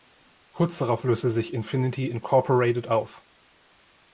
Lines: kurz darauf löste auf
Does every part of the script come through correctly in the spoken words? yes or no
no